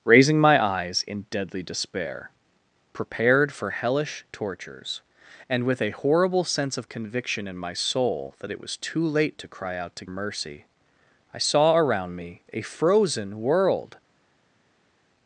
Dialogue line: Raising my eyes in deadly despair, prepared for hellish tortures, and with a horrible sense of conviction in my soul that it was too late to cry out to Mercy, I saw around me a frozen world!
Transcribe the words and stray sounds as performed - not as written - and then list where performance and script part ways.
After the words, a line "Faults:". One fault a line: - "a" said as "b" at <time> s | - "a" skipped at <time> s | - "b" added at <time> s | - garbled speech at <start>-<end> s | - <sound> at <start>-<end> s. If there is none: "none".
Raising my eyes in deadly despair, prepared for hellish tortures, and with a horrible sense of conviction in my soul that it was too late to cry out to Mercy, I saw around me a frozen world!
Faults:
none